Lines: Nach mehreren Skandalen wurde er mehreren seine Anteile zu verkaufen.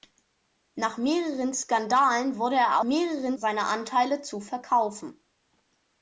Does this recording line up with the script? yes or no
yes